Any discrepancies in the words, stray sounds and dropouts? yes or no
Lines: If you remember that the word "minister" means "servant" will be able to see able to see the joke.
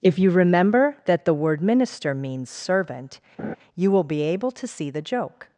yes